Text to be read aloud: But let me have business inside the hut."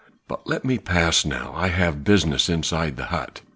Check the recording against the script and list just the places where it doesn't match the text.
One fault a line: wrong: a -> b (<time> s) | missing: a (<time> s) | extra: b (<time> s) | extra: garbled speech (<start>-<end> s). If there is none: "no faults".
extra: pass now I (0.8 s)